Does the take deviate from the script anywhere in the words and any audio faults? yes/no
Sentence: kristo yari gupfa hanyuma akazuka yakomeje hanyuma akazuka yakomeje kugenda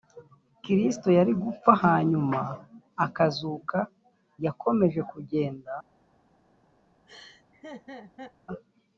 yes